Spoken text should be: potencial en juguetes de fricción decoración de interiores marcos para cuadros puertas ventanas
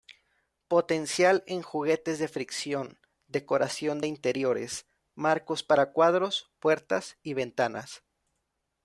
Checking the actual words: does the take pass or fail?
fail